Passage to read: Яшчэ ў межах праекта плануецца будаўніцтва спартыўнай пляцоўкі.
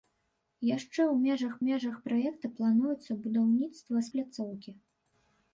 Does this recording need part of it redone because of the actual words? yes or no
yes